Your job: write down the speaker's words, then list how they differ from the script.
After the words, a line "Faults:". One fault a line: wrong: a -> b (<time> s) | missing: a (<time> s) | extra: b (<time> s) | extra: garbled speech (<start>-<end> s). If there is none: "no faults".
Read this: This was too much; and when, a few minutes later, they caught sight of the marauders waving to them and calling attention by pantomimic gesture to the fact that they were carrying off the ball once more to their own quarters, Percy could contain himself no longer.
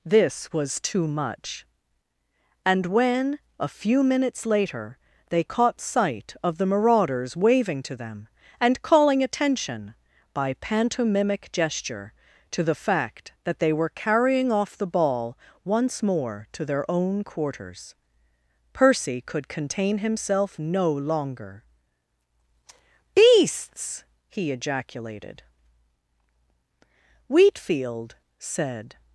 This was too much; and when, a few minutes later, they caught sight of the marauders waving to them and calling attention by pantomimic gesture to the fact that they were carrying off the ball once more to their own quarters, Percy could contain himself no longer. "Beasts!" he ejaculated. "Wheatfield," said
Faults:
extra: Beasts he ejaculated Wheatfield said (23.2 s)